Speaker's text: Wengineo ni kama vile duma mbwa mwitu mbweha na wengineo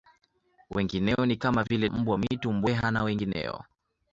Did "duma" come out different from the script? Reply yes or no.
yes